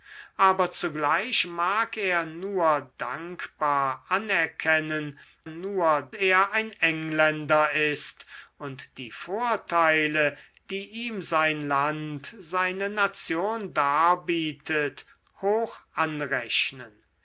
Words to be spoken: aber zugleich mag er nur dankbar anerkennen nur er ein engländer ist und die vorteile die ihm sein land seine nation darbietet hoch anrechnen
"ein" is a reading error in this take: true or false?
false